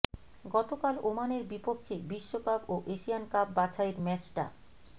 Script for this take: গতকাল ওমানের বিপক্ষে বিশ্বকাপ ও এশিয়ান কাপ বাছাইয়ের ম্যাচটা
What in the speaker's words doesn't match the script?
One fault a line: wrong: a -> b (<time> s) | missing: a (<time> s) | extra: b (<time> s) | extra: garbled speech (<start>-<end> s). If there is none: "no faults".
no faults